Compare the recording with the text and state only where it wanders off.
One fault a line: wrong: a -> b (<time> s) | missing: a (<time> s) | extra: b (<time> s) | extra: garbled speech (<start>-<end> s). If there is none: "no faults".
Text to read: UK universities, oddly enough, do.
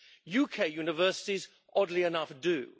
no faults